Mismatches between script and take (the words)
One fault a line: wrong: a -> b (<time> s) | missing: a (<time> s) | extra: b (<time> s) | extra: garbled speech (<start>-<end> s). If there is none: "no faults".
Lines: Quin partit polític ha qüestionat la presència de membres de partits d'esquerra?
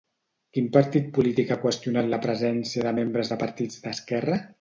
no faults